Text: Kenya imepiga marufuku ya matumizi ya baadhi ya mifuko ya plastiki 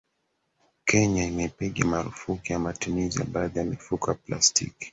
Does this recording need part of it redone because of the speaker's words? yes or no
no